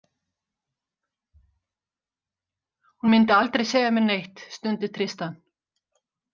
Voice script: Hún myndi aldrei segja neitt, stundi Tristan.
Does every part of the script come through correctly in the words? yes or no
no